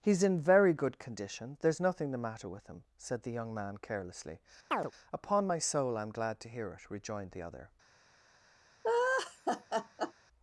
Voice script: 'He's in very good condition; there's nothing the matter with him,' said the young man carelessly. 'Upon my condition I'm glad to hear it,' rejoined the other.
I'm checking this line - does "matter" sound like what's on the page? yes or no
yes